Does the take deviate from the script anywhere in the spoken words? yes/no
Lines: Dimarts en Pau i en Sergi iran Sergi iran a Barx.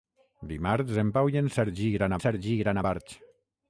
no